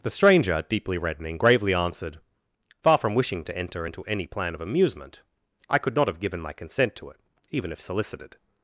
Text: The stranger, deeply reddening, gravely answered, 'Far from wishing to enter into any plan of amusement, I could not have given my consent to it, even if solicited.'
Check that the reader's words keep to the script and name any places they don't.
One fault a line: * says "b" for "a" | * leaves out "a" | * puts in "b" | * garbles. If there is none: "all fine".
all fine